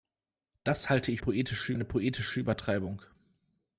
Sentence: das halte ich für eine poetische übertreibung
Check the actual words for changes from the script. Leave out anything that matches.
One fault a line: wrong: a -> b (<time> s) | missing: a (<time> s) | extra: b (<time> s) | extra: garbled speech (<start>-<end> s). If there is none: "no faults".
wrong: für -> poetische (1.2 s)